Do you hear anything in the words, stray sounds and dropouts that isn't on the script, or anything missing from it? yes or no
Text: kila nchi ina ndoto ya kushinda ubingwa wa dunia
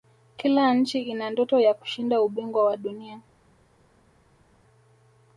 no